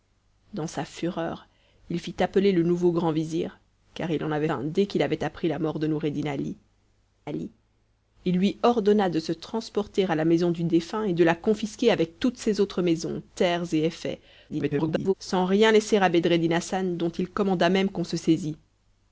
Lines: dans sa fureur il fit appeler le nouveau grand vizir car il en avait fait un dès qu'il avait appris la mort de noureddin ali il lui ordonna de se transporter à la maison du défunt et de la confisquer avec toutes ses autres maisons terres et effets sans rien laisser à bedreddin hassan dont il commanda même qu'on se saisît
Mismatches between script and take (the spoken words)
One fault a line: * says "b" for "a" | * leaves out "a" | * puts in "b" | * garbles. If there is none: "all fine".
* leaves out "fait"
* puts in "ali"
* garbles